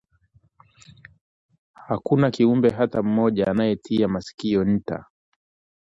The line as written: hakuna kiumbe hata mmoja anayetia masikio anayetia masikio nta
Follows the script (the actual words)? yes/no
no